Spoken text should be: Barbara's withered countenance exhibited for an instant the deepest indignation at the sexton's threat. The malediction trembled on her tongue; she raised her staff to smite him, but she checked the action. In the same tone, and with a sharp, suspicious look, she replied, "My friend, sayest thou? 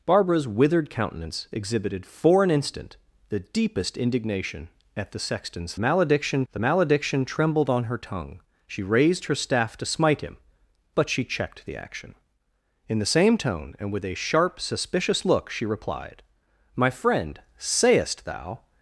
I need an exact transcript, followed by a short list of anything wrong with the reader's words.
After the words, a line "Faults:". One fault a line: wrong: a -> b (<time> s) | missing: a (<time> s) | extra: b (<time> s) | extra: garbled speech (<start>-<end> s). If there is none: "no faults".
Barbara's withered countenance exhibited for an instant the deepest indignation at the sexton's malediction. The malediction trembled on her tongue; she raised her staff to smite him, but she checked the action. In the same tone, and with a sharp, suspicious look, she replied, "My friend, sayest thou?
Faults:
wrong: threat -> malediction (5.8 s)